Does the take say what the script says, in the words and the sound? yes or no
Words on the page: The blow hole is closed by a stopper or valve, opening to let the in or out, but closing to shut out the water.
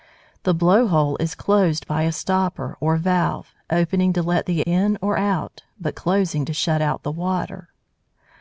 yes